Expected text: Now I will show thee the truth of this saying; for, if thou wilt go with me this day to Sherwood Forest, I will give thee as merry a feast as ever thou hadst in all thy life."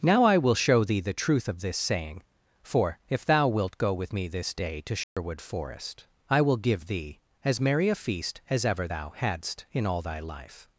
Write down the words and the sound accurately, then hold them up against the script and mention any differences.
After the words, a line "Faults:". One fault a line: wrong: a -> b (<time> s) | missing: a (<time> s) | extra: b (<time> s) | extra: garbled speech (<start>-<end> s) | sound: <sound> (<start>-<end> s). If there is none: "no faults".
Now I will show thee the truth of this saying; for, if thou wilt go with me this day to Sherwood Forest, I will give thee as merry a feast as ever thou hadst in all thy life."
Faults:
sound: dropout (5.0-5.2 s)